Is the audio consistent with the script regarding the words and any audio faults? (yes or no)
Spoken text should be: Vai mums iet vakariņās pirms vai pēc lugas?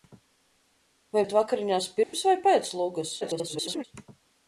no